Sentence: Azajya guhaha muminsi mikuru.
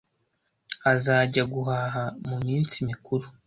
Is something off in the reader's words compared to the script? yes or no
no